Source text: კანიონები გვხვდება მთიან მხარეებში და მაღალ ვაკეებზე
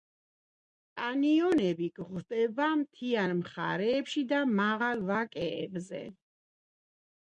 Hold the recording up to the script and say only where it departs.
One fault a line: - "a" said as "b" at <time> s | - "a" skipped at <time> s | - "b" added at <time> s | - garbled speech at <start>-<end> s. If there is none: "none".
none